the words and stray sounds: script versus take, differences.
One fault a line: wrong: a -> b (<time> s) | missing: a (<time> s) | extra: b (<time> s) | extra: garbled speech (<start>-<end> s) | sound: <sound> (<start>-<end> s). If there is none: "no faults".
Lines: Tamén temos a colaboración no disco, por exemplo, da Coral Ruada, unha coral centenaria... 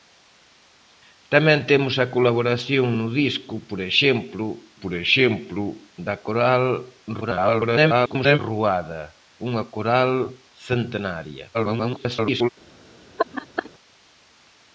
extra: por exemplo (4.8 s)
extra: garbled speech (7.2-8.4 s)
extra: garbled speech (11.5-12.5 s)
sound: laugh (13.2-13.7 s)